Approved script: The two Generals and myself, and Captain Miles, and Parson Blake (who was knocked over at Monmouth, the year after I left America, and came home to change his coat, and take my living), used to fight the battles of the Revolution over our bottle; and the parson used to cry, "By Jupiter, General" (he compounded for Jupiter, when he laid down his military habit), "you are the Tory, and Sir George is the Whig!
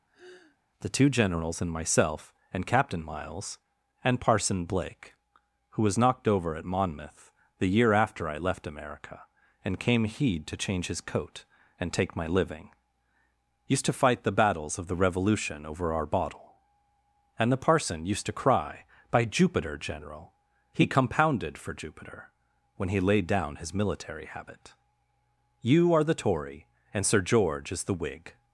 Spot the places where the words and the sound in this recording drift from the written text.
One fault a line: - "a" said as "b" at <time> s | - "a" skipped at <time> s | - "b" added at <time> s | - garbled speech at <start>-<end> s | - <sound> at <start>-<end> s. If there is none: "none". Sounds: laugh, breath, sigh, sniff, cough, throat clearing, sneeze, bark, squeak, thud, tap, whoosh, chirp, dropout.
- sigh at 0.1-0.6 s
- "home" said as "heed" at 10.0 s